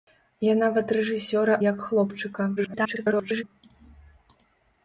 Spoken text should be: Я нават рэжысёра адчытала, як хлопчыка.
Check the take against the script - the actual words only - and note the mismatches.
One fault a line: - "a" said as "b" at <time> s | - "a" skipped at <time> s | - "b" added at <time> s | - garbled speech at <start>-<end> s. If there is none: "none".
- "адчытала" skipped at 1.6 s
- garbled speech at 2.6-3.4 s